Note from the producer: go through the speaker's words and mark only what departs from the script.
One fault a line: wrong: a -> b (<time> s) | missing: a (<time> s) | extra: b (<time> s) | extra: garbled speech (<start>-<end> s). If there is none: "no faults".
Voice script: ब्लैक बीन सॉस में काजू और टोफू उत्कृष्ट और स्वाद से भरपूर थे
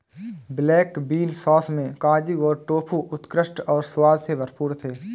no faults